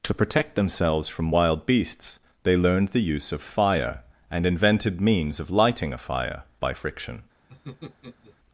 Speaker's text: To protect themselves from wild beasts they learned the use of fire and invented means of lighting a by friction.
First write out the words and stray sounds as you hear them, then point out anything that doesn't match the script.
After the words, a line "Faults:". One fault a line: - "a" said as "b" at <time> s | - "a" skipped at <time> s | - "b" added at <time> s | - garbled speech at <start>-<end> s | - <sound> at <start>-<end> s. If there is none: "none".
To protect themselves from wild beasts they learned the use of fire and invented means of lighting a fire by friction.
Faults:
- "fire" added at 6.0 s
- laugh at 7.5-8.4 s